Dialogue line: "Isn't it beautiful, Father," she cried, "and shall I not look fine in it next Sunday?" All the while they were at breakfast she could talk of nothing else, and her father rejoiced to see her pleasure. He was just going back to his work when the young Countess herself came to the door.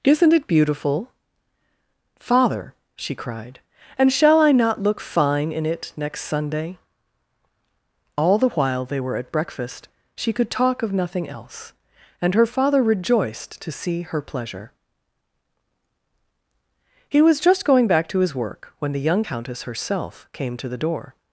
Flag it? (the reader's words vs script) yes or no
no